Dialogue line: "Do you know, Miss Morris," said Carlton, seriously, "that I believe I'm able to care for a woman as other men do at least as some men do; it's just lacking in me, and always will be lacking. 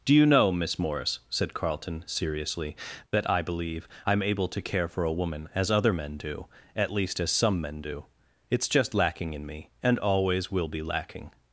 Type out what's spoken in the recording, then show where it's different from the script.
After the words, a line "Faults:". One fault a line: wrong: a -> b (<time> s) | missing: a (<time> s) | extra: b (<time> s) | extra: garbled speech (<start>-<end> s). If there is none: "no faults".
"Do you know, Miss Morris," said Carlton, seriously, "that I believe I'm able to care for a woman as other men do at least as some men do; it's just lacking in me, and always will be lacking.
Faults:
no faults